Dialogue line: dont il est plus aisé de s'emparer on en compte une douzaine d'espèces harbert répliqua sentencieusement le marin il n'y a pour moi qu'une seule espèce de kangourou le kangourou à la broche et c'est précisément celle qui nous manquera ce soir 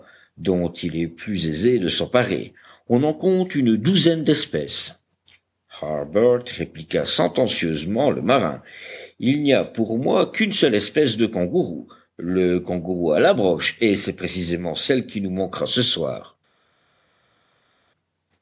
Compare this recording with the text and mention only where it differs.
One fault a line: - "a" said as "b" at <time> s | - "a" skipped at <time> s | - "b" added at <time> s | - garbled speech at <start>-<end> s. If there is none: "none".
none